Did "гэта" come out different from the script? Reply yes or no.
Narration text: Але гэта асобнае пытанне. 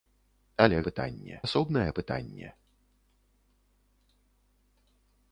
yes